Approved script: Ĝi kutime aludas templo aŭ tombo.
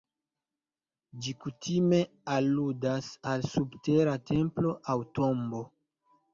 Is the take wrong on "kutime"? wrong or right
right